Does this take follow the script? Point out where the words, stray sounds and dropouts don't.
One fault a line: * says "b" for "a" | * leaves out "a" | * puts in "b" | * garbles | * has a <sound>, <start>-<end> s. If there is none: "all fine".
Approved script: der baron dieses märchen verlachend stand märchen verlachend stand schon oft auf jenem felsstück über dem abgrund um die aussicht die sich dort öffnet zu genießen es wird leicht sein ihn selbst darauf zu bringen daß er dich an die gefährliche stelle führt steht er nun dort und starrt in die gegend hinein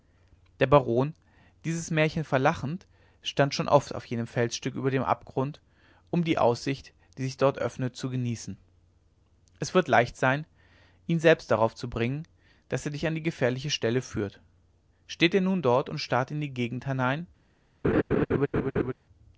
* leaves out "märchen verlachend stand"
* has a laugh, 17.8-18.9 s